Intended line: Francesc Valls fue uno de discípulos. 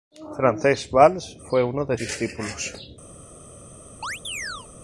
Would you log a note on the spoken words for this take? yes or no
no